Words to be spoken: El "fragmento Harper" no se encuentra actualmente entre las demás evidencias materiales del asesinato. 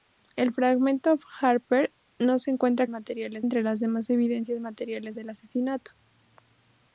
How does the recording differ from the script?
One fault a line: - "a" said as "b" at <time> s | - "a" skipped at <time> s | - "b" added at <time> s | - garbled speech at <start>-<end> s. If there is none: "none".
- "actualmente" said as "materiales" at 2.9 s